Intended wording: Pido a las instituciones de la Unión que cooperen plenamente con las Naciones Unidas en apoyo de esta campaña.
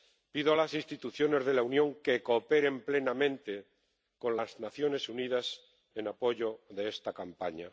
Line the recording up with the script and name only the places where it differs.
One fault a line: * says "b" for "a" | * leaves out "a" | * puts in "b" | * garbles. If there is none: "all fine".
all fine